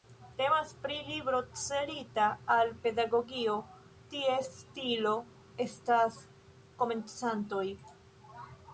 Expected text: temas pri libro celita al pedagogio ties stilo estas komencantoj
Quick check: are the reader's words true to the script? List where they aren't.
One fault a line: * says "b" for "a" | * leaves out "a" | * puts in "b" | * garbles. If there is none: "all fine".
all fine